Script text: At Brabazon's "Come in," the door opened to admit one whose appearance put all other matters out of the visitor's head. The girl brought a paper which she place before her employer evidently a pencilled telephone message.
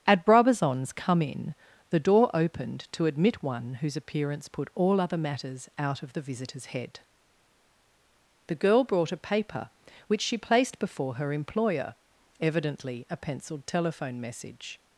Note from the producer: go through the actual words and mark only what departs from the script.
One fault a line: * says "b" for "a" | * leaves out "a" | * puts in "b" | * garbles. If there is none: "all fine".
* says "placed" for "place"